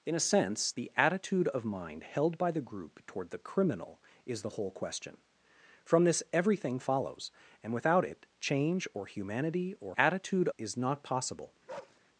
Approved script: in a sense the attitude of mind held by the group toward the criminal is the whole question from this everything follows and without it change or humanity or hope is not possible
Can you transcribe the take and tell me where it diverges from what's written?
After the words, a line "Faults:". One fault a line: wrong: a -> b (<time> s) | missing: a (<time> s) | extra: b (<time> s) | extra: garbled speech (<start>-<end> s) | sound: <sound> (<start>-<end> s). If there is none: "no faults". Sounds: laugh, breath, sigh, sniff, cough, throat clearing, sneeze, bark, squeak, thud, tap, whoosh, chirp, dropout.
in a sense the attitude of mind held by the group toward the criminal is the whole question from this everything follows and without it change or humanity or attitude is not possible
Faults:
wrong: hope -> attitude (10.0 s)
sound: bark (11.7-12.0 s)